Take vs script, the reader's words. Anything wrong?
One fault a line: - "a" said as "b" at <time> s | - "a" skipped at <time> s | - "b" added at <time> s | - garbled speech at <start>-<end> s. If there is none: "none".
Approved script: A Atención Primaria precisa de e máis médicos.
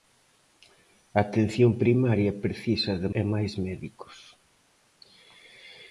none